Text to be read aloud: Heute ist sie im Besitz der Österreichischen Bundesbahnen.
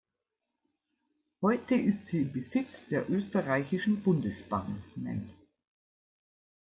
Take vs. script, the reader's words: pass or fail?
pass